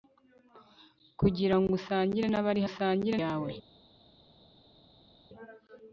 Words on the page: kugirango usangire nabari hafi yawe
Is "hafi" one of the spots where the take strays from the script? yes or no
yes